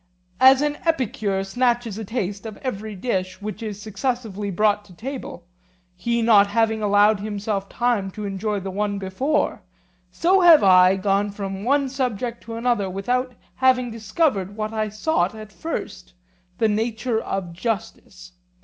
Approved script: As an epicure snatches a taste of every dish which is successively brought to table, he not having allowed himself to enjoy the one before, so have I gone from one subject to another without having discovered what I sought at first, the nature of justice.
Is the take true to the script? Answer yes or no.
no